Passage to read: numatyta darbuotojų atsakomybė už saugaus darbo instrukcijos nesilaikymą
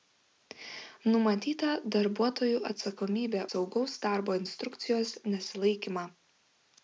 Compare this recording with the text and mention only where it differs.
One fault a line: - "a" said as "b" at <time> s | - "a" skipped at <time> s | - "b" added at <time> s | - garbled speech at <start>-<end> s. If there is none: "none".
- "už" skipped at 3.4 s